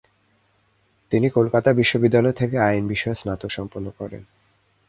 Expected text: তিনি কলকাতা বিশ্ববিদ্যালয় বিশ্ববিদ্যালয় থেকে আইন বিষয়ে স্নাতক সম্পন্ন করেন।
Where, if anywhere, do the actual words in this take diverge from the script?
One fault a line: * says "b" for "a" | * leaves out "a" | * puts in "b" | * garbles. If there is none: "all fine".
* leaves out "বিশ্ববিদ্যালয়"